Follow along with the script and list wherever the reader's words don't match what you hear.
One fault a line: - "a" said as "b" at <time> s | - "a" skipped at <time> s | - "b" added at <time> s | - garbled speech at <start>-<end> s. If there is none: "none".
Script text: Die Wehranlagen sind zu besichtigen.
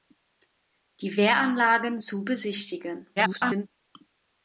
- "sind" skipped at 2.0 s
- garbled speech at 3.2-3.7 s